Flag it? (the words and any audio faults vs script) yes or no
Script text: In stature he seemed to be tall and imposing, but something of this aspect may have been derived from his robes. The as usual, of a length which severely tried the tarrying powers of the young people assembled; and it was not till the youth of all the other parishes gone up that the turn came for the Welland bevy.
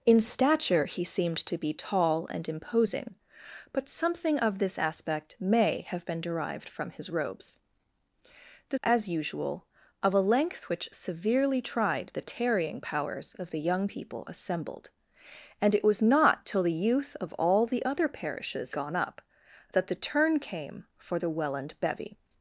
no